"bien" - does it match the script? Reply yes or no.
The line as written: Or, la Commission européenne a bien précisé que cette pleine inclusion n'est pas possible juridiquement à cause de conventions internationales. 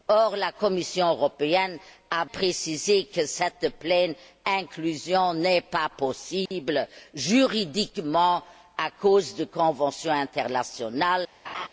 no